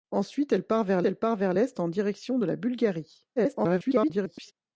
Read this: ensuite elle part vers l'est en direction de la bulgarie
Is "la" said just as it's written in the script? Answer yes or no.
yes